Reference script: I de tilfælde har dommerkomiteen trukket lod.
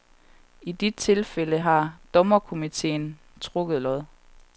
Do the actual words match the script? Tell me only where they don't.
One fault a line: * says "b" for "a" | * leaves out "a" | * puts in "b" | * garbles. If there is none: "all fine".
all fine